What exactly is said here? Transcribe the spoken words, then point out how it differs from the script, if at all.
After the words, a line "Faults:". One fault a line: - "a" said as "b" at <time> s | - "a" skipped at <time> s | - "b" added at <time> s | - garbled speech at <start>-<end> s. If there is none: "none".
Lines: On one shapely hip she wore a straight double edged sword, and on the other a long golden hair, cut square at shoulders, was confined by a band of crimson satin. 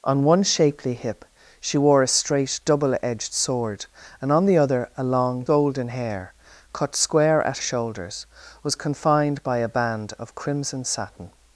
On one shapely hip she wore a straight double edged sword, and on the other a long golden hair, cut square at shoulders, was confined by a band of crimson satin.
Faults:
none